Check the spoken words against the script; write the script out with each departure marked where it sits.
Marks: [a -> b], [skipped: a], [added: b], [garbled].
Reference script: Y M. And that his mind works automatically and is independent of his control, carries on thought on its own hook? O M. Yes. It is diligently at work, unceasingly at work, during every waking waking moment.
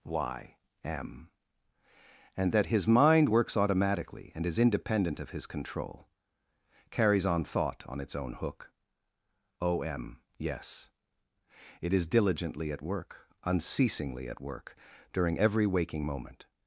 Y M. And that his mind works automatically and is independent of his control, carries on thought on its own hook? O M. Yes. It is diligently at work, unceasingly at work, during every waking [skipped: waking] moment.